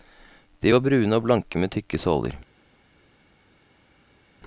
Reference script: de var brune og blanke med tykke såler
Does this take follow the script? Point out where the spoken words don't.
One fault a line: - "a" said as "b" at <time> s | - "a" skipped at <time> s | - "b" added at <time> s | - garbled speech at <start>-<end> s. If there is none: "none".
none